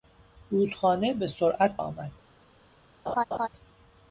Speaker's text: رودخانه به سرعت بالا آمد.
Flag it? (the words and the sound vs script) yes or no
yes